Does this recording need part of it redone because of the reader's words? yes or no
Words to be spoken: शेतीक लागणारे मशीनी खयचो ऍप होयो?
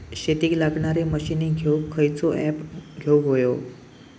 yes